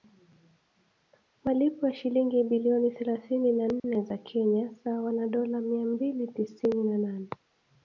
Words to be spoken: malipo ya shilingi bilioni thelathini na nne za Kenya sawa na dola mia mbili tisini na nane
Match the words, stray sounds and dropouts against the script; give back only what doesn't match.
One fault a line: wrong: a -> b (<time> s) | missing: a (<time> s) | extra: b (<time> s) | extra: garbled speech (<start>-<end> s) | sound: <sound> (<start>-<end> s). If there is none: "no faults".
sound: dropout (3.8-3.8 s)